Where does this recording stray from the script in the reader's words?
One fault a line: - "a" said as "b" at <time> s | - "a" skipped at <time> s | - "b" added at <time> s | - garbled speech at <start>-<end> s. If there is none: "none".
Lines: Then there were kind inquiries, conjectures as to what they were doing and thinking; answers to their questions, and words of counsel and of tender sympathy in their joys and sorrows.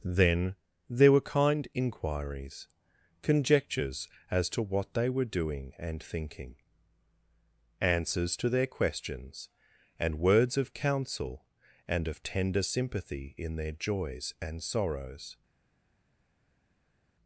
none